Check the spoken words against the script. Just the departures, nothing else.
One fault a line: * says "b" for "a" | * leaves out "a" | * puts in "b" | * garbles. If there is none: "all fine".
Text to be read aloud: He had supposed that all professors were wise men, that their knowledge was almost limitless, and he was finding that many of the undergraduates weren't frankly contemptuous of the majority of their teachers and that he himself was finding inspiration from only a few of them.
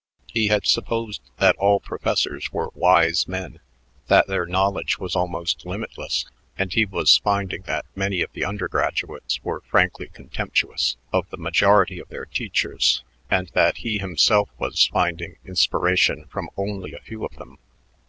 * says "were" for "weren't"